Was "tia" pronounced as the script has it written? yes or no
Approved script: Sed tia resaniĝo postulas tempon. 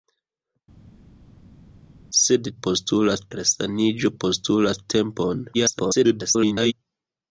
no